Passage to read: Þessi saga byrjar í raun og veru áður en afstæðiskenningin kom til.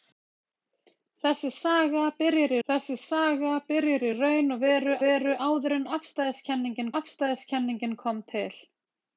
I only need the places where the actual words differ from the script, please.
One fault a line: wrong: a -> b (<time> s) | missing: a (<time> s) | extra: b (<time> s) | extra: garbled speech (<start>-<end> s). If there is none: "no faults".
extra: þessi saga byrjar (2.7 s)
extra: veru (5.0 s)
extra: afstæðiskenningin (7.0 s)